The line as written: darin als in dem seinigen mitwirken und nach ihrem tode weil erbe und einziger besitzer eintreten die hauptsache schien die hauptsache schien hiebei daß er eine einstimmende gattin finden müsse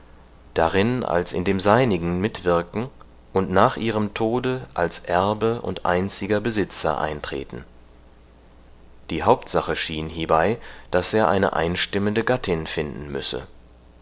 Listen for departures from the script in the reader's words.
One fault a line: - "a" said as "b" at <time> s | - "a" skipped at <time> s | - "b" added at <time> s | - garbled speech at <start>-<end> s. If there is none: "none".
- "weil" said as "als" at 4.7 s
- "die hauptsache schien" skipped at 10.1 s